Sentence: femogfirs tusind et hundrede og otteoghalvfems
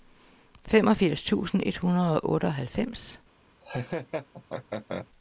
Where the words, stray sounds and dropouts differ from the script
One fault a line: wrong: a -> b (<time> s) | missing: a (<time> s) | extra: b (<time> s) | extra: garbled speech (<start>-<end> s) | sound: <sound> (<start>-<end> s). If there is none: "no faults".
sound: laugh (3.6-5.1 s)